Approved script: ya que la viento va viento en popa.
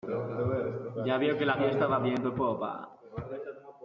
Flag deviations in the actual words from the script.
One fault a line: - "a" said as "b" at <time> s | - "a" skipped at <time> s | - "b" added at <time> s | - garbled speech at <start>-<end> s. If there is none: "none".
- "veo" added at 1.2 s
- "viento" said as "fiesta" at 1.6 s